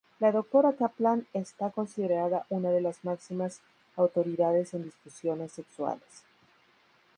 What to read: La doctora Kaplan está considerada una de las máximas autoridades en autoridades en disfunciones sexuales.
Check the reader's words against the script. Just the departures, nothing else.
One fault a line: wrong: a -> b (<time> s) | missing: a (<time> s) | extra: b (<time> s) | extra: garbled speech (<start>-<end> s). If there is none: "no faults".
missing: autoridades en (4.8 s)